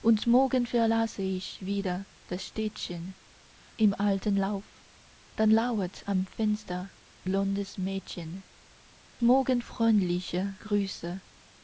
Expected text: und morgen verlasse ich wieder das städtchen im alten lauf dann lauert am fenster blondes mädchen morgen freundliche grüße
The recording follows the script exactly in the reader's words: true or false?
true